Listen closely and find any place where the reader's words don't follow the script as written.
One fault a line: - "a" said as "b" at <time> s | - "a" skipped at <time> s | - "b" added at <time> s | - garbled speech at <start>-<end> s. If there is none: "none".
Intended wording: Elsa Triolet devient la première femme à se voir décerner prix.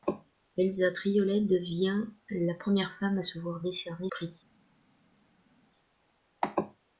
none